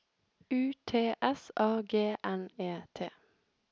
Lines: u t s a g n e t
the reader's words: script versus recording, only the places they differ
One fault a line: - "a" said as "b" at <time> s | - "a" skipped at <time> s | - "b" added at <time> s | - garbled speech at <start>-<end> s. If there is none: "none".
none